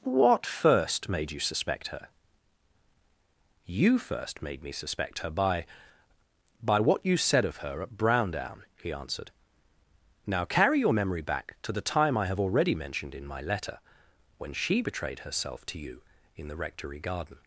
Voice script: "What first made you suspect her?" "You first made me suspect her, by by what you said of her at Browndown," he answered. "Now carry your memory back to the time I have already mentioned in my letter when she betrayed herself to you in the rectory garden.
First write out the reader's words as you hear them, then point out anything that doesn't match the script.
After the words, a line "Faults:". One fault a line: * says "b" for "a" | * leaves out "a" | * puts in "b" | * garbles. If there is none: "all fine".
"What first made you suspect her?" "You first made me suspect her, by by what you said of her at Browndown," he answered. "Now carry your memory back to the time I have already mentioned in my letter when she betrayed herself to you in the rectory garden.
Faults:
all fine